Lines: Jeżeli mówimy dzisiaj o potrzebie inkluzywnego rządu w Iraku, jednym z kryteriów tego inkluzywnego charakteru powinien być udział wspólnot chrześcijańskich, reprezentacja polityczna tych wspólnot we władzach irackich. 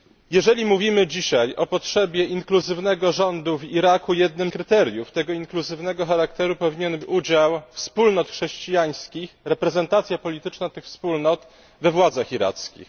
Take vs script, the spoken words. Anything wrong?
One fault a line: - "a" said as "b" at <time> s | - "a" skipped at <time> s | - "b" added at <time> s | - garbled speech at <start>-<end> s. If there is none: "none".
- "z" skipped at 4.5 s
- "być" skipped at 7.0 s